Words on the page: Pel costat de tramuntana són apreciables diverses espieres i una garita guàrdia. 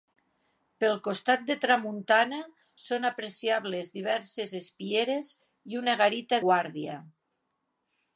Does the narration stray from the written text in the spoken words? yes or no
no